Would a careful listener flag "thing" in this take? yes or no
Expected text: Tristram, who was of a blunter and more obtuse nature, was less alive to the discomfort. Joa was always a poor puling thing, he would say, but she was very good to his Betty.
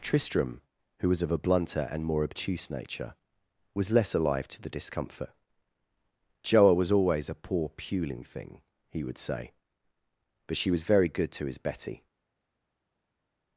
no